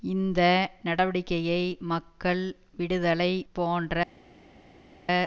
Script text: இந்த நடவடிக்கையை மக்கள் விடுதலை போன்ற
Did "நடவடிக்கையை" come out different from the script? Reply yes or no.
no